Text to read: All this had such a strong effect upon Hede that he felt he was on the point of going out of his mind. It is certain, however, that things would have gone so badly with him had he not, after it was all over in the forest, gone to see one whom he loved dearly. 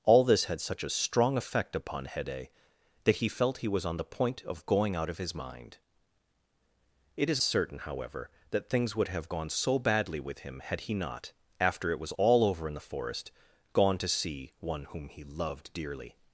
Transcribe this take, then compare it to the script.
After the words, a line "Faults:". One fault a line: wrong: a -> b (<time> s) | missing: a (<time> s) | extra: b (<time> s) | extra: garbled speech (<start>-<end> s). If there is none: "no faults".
All this had such a strong effect upon Hede that he felt he was on the point of going out of his mind. It is certain, however, that things would have gone so badly with him had he not, after it was all over in the forest, gone to see one whom he loved dearly.
Faults:
no faults